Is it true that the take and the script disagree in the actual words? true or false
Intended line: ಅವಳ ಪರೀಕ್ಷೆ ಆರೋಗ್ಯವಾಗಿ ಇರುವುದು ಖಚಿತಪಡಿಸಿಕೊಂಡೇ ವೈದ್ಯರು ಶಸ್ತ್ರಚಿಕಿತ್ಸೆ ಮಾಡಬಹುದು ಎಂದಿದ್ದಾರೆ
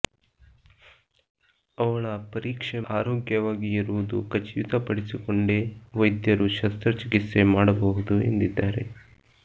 false